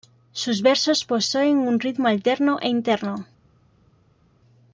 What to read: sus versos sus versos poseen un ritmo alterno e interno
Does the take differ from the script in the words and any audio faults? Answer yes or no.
yes